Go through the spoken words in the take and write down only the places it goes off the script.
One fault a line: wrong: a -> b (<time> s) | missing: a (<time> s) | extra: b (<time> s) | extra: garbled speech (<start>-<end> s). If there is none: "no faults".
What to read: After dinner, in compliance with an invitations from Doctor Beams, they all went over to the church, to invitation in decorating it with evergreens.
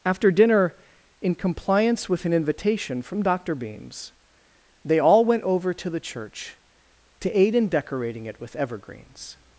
wrong: invitations -> invitation (2.3 s)
wrong: invitation -> aid (7.4 s)